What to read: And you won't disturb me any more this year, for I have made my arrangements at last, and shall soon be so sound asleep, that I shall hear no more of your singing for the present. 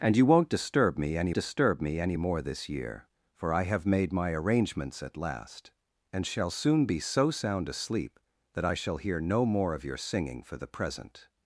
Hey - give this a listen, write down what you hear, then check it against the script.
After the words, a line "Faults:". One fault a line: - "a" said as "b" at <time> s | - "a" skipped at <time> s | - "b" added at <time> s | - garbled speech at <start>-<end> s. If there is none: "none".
And you won't disturb me any disturb me any more this year, for I have made my arrangements at last, and shall soon be so sound asleep, that I shall hear no more of your singing for the present.
Faults:
- "disturb me any" added at 1.3 s